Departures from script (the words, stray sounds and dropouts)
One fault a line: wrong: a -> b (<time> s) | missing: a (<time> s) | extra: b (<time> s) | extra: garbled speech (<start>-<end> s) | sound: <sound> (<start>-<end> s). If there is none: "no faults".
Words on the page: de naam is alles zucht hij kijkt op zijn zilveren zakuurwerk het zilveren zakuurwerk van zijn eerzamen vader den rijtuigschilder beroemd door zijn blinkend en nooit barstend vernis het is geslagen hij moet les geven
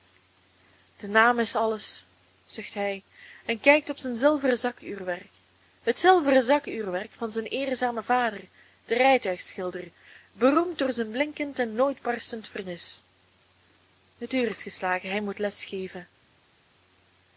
extra: en (3.5 s)
extra: uur (14.3 s)